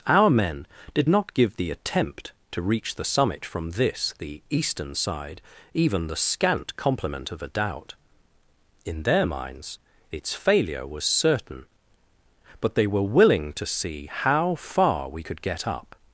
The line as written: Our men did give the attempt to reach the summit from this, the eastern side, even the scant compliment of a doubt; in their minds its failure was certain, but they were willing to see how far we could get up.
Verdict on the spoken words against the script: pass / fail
fail